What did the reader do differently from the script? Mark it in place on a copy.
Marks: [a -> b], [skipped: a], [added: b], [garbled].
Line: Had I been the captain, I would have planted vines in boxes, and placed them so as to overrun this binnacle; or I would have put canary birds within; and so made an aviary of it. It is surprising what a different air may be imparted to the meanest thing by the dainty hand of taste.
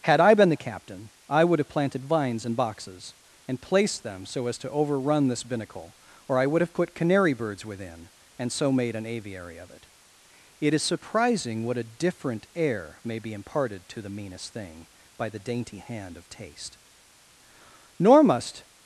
Had I been the captain, I would have planted vines in boxes, and placed them so as to overrun this binnacle; or I would have put canary birds within; and so made an aviary of it. It is surprising what a different air may be imparted to the meanest thing by the dainty hand of taste. [added: Nor must]